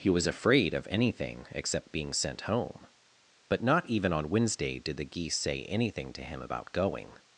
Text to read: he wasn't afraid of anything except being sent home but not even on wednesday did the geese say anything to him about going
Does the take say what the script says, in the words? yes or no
no